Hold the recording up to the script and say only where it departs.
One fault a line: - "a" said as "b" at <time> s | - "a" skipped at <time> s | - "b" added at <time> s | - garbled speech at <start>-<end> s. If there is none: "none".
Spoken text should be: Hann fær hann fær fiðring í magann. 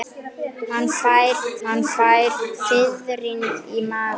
none